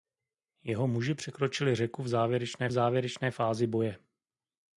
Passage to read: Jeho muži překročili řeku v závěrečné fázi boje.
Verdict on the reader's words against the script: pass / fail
fail